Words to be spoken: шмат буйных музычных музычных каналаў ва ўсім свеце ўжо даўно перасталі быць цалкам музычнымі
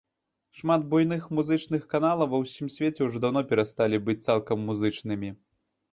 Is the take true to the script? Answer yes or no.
no